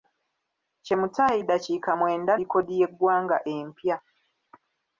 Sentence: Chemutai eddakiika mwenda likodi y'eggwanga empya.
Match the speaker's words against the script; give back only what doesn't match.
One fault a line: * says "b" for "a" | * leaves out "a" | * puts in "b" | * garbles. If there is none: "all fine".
all fine